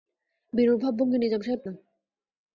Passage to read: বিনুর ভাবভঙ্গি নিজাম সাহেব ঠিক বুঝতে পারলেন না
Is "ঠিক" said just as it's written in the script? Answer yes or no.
no